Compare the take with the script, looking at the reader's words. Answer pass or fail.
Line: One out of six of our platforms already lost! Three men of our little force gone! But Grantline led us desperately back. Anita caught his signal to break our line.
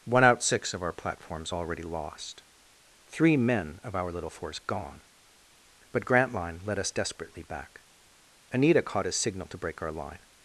fail